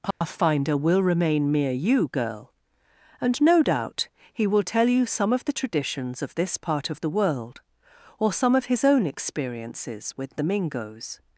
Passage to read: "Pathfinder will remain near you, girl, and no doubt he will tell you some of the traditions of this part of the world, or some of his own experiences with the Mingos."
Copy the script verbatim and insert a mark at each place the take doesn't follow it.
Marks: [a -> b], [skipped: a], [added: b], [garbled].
"Pathfinder will remain [near -> mere] you, girl, and no doubt he will tell you some of the traditions of this part of the world, or some of his own experiences with the Mingos."